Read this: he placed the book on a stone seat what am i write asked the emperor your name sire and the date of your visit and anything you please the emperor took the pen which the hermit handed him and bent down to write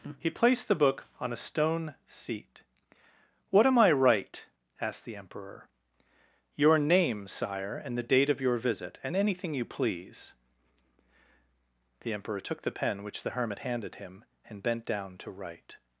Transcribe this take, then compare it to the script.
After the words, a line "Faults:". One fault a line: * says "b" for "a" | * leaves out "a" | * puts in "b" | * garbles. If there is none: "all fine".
he placed the book on a stone seat what am i write asked the emperor your name sire and the date of your visit and anything you please the emperor took the pen which the hermit handed him and bent down to write
Faults:
all fine